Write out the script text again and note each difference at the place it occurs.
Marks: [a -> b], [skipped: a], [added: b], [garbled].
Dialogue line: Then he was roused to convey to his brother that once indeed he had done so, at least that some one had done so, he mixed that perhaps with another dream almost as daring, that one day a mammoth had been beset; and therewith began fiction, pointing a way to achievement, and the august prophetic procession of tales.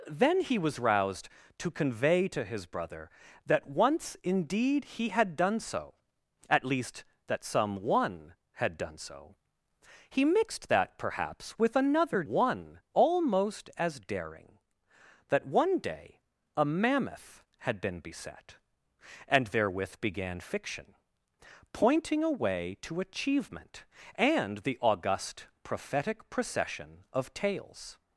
Then he was roused to convey to his brother that once indeed he had done so, at least that some one had done so, he mixed that perhaps with another [dream -> one] almost as daring, that one day a mammoth had been beset; and therewith began fiction, pointing a way to achievement, and the august prophetic procession of tales.